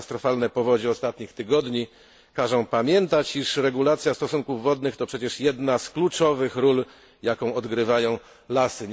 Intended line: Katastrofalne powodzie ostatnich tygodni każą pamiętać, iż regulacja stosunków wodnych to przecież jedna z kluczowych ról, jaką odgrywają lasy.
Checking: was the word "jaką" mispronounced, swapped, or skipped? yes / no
no